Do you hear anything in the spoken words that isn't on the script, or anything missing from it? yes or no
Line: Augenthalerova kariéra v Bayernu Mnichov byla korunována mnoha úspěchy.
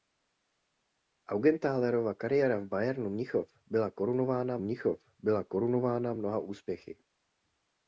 yes